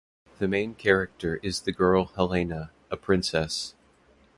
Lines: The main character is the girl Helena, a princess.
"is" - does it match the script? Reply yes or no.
yes